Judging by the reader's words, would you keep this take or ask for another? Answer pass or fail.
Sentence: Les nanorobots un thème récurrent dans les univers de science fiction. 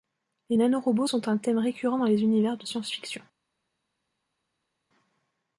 fail